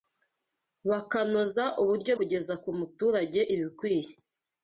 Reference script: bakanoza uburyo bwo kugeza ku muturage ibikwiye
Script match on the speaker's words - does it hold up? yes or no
no